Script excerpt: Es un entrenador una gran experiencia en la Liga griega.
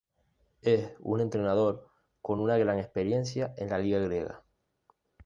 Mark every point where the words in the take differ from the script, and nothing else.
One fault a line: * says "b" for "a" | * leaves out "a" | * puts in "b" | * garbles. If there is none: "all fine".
* puts in "con"